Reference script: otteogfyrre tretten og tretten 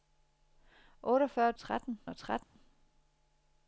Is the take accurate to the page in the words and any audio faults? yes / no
no